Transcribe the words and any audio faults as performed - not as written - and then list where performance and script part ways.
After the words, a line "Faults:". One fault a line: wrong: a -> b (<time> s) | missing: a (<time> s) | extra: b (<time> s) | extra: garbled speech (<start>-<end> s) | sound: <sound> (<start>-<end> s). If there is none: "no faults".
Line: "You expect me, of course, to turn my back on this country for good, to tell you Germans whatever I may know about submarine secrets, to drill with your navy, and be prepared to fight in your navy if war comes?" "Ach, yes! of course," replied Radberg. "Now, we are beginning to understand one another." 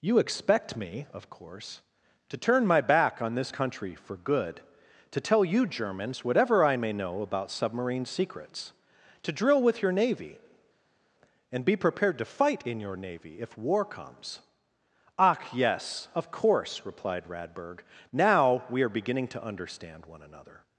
"You expect me, of course, to turn my back on this country for good, to tell you Germans whatever I may know about submarine secrets, to drill with your navy, and be prepared to fight in your navy if war comes?" "Ach, yes! of course," replied Radberg. "Now, we are beginning to understand one another."
Faults:
no faults